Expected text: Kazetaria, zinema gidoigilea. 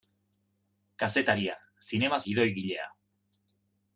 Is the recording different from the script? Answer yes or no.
no